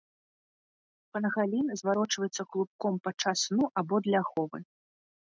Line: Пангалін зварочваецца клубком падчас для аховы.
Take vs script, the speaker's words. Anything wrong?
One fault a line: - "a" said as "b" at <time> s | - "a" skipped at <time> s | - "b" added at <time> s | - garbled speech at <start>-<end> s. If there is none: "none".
- "сну або" added at 3.5 s